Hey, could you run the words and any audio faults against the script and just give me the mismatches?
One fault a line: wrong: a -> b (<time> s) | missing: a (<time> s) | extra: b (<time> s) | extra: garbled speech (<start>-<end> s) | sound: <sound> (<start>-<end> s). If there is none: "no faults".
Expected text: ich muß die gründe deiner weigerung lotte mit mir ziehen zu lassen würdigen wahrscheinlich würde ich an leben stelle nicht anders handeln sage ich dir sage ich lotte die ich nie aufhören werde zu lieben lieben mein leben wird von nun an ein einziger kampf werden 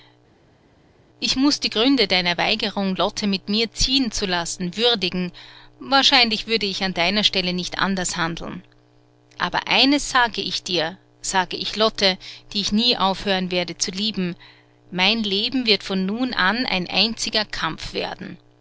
wrong: leben -> deiner (6.9 s)
extra: aber eines (9.4 s)
missing: lieben (14.4 s)